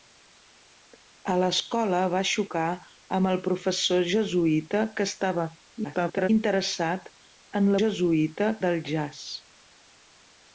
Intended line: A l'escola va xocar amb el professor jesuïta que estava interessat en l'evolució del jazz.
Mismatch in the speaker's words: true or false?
true